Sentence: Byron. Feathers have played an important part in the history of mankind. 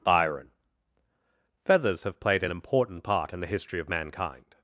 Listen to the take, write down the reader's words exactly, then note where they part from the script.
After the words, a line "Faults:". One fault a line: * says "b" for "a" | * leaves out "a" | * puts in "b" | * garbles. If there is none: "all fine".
Byron. Feathers have played an important part in the history of mankind.
Faults:
all fine